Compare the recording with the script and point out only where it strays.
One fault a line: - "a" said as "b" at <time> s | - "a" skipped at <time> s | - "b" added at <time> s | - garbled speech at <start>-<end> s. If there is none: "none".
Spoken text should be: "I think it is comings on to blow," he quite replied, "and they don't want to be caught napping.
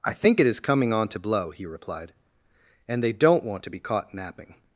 - "comings" said as "coming" at 0.6 s
- "quite" skipped at 1.7 s